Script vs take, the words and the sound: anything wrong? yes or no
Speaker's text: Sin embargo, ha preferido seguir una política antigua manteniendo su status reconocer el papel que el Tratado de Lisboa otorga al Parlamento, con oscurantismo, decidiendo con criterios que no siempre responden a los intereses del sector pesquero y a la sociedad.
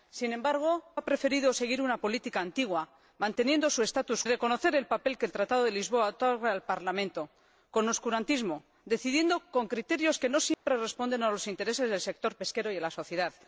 yes